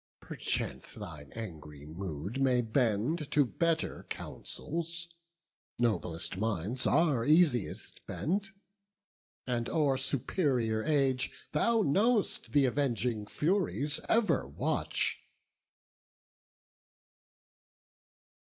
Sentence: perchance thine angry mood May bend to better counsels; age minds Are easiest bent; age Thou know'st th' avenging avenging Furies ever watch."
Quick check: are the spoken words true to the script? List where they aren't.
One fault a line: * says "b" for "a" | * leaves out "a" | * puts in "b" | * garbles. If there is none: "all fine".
* says "noblest" for "age"
* puts in "and o'er superior"
* leaves out "avenging"